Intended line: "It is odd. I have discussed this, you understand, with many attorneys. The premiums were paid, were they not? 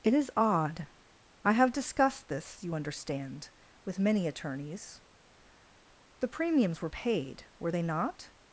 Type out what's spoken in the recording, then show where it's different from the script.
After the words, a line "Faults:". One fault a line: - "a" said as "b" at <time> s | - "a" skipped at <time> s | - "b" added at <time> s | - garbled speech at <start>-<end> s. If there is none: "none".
"It is odd. I have discussed this, you understand, with many attorneys. The premiums were paid, were they not?
Faults:
none